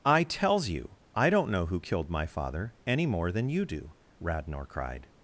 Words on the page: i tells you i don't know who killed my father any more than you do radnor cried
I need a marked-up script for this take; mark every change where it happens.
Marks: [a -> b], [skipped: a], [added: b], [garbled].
i tells you i don't know who killed my father any more than you do radnor cried